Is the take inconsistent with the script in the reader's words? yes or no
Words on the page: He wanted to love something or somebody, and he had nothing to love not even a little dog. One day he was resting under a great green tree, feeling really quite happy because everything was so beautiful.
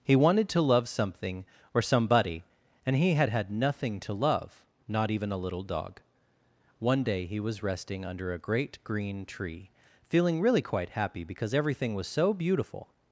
yes